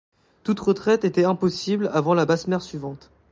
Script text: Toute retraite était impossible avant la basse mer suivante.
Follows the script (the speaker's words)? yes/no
yes